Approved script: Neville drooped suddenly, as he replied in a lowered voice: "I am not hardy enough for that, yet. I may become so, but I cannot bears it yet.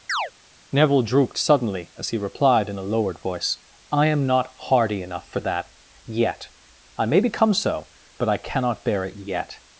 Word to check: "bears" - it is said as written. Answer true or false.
false